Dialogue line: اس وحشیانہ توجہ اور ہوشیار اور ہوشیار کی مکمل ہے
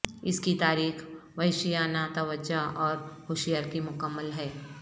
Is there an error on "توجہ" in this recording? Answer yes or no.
no